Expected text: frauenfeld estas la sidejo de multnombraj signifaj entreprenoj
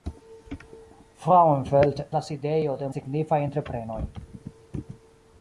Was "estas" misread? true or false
true